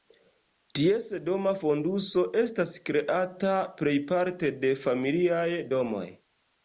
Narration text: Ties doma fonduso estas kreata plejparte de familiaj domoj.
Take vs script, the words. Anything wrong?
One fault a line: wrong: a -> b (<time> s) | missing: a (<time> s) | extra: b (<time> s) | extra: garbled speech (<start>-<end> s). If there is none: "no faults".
no faults